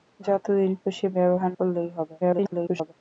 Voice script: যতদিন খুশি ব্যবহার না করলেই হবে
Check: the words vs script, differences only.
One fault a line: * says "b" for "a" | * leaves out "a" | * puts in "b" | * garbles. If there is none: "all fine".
* leaves out "না"
* garbles